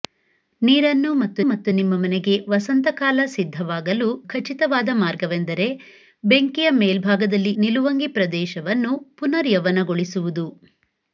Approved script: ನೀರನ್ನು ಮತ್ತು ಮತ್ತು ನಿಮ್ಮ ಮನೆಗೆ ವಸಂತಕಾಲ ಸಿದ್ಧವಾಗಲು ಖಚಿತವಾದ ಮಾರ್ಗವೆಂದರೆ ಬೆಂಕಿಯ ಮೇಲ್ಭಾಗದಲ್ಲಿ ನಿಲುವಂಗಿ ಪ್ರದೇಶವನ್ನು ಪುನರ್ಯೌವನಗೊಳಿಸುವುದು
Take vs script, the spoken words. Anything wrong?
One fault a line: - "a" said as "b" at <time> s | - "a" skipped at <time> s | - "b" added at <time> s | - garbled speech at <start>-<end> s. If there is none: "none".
none